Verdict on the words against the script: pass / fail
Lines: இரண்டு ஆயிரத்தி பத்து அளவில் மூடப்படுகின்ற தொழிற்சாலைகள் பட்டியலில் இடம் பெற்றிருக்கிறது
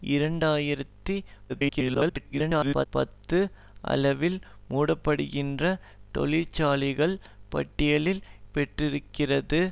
fail